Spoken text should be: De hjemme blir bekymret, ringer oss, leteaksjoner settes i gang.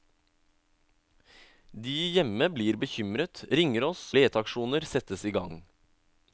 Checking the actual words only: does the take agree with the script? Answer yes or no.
yes